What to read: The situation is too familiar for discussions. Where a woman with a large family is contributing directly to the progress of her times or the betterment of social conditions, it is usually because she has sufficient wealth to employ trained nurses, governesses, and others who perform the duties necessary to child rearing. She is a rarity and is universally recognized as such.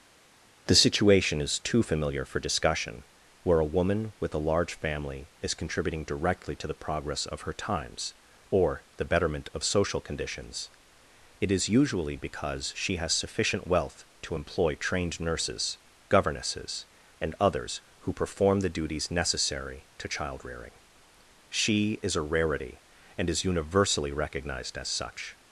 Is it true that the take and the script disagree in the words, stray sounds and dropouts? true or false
true